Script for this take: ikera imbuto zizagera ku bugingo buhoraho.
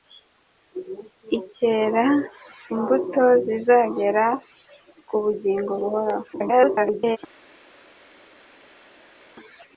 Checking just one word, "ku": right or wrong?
right